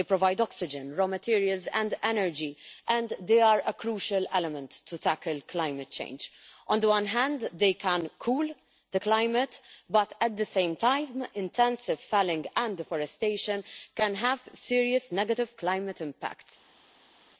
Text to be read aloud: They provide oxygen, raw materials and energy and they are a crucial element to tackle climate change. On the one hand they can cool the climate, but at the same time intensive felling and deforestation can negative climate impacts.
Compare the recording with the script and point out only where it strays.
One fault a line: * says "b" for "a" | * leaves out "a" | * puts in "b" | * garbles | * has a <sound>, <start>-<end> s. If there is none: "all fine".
* puts in "have serious"